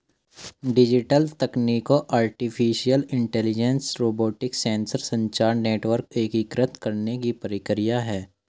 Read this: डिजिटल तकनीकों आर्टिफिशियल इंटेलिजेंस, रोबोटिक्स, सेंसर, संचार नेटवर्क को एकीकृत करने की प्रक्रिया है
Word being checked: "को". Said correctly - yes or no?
no